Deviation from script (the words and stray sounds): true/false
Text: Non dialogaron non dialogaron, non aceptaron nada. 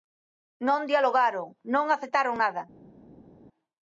true